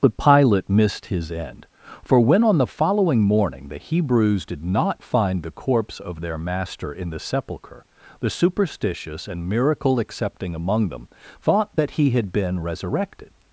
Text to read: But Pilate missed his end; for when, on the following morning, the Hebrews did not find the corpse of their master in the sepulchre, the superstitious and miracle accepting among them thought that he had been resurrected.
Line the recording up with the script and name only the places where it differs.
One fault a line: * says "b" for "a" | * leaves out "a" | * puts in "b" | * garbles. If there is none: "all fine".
all fine